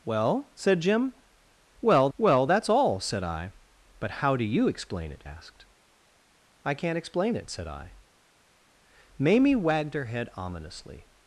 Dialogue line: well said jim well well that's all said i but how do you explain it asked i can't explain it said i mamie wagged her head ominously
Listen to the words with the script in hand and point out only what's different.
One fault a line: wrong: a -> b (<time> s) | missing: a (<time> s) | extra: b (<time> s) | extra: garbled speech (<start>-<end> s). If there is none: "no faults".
no faults